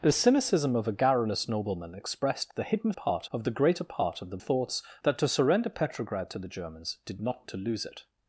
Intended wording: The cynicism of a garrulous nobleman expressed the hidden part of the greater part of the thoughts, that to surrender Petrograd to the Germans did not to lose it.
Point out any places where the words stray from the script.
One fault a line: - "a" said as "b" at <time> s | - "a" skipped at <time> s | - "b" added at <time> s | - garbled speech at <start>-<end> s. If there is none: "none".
none